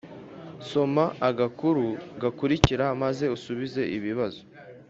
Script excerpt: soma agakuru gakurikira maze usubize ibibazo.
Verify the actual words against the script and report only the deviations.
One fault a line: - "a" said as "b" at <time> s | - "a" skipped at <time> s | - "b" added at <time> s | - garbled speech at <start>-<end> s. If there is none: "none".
none